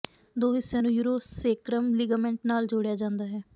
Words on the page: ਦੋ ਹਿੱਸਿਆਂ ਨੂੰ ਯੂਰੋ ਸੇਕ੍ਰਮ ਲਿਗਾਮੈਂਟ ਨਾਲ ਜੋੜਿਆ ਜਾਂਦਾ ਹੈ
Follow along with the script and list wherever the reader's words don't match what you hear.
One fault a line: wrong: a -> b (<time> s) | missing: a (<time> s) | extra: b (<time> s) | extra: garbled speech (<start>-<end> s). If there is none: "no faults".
no faults